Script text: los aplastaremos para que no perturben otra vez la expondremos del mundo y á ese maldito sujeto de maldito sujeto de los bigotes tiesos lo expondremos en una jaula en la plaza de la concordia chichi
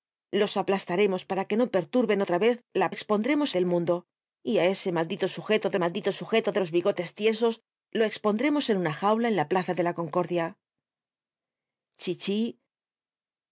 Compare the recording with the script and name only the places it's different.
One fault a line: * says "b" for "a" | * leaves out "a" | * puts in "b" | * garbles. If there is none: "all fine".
all fine